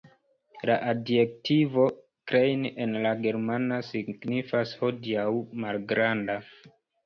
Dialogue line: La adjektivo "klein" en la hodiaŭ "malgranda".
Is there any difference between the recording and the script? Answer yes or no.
yes